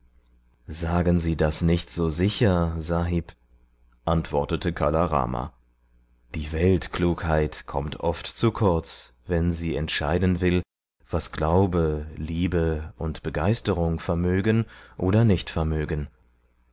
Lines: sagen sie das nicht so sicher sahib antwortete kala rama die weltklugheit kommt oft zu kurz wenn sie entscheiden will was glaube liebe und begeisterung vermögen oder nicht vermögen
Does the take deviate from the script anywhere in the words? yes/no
no